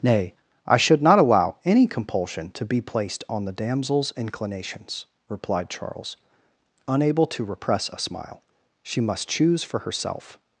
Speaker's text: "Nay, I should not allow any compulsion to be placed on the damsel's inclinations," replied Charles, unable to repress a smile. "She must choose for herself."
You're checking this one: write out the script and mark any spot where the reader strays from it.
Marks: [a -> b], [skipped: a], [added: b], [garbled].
"Nay, I should not allow any compulsion to be placed on the damsel's inclinations," replied Charles, unable to repress a smile. "She must choose for herself."